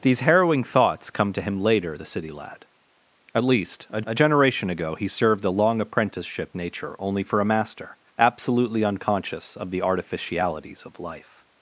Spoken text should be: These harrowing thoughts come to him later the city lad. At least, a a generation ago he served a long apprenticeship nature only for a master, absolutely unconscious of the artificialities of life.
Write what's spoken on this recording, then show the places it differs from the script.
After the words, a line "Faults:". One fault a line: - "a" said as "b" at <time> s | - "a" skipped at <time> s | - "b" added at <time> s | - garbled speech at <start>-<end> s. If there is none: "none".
These harrowing thoughts come to him later the city lad. At least, a a generation ago he served a long apprenticeship nature only for a master, absolutely unconscious of the artificialities of life.
Faults:
none